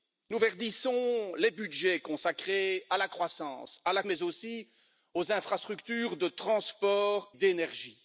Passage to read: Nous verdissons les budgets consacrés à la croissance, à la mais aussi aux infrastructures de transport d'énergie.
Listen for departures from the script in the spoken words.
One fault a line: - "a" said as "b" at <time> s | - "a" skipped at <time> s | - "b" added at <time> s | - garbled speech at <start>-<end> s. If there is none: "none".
none